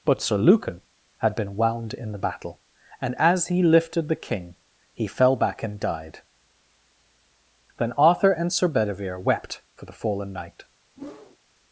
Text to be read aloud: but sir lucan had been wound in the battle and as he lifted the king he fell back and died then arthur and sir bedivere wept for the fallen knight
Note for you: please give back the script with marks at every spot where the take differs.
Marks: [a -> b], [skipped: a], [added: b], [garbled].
but sir lucan had been wound in the battle and as he lifted the king he fell back and died then arthur and sir bedivere wept for the fallen knight